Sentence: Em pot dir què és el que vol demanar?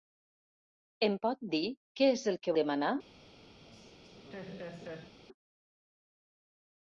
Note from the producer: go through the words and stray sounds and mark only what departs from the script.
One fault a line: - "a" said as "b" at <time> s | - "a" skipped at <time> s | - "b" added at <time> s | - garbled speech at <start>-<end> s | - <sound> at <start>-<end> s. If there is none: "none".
- "vol" skipped at 2.5 s
- laugh at 3.6-5.1 s